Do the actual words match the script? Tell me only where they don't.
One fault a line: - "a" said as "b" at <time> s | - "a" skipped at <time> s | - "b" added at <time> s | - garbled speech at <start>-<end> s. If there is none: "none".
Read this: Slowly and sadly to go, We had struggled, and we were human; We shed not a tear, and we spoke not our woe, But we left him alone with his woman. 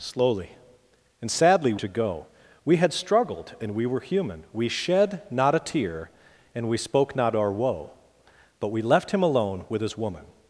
none